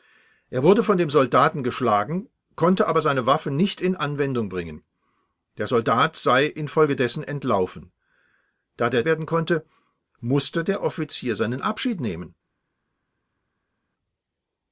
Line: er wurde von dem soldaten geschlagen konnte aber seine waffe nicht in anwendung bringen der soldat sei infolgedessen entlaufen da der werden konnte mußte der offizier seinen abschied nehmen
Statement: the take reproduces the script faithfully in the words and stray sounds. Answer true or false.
true